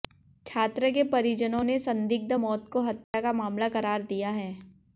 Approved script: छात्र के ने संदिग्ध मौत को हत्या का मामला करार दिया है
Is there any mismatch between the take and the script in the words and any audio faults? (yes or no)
yes